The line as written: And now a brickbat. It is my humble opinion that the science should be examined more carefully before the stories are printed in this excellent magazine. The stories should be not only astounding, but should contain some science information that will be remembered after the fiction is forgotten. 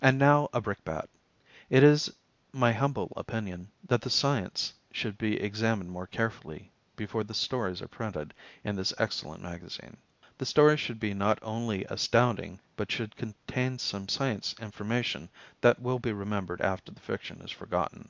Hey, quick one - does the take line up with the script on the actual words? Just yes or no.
yes